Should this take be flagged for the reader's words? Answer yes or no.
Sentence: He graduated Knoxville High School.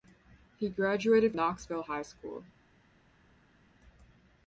no